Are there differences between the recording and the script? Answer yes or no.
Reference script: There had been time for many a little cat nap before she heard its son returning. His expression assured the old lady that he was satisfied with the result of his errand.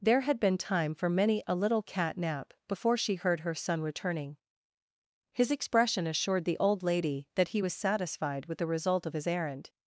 yes